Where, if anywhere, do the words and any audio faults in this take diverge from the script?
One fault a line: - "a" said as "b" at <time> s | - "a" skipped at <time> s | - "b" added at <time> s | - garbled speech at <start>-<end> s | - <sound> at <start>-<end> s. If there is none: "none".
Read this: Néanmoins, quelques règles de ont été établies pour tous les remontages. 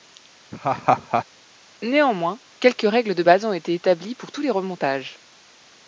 - laugh at 0.5-1.2 s
- "base" added at 3.2 s